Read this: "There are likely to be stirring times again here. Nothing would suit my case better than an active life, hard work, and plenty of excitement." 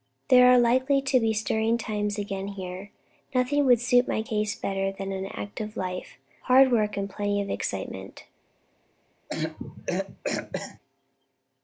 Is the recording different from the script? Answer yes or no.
no